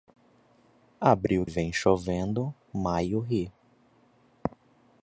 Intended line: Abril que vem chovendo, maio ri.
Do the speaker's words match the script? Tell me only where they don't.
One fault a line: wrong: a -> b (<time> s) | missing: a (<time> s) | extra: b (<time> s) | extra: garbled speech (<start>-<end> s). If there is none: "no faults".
missing: que (1.4 s)